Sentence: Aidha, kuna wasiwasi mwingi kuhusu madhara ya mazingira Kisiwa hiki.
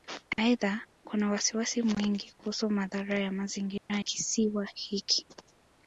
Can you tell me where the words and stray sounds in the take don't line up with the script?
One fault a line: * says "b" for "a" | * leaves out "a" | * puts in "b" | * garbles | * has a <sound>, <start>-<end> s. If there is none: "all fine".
* has a dropout, 3.8-3.9 s